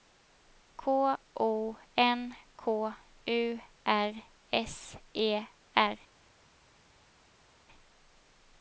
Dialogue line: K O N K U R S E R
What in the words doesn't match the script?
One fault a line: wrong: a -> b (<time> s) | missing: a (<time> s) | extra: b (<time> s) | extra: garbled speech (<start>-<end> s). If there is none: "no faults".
no faults